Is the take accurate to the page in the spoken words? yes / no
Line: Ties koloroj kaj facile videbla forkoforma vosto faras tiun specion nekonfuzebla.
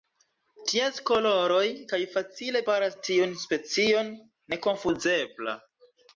no